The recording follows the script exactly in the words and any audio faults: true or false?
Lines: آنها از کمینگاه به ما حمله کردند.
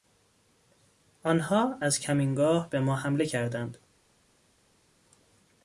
true